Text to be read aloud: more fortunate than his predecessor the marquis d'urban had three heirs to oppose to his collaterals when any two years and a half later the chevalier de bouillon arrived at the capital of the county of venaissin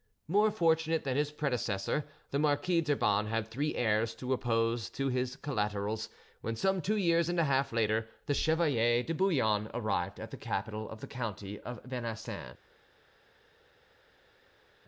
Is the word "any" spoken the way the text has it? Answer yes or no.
no